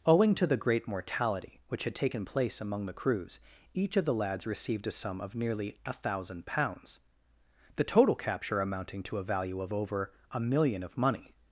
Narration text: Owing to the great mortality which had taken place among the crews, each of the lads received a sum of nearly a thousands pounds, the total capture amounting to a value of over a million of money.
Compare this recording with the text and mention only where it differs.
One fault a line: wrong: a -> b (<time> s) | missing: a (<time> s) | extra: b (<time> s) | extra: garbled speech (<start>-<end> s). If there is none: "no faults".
wrong: thousands -> thousand (5.9 s)